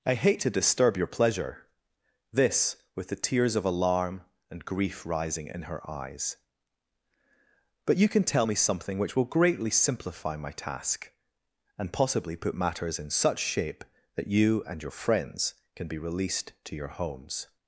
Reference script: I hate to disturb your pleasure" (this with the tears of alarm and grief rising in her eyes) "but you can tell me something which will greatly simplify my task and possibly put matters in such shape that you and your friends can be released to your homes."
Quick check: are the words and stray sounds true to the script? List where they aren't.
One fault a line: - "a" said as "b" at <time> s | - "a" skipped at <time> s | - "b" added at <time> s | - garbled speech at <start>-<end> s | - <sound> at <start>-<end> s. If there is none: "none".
none